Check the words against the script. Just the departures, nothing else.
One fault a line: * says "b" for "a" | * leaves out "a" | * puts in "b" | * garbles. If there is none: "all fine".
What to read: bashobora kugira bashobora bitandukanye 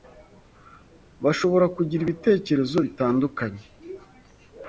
* says "ibitekerezo" for "bashobora"